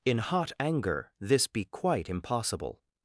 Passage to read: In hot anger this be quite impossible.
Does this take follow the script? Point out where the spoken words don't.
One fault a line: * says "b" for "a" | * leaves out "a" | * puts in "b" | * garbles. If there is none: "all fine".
all fine